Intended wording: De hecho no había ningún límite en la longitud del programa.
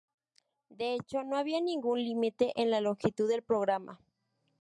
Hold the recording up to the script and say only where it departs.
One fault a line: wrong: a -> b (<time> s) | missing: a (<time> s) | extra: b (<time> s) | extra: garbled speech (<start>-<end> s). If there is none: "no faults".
no faults